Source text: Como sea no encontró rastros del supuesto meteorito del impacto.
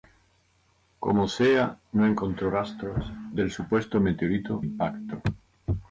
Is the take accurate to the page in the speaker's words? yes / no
no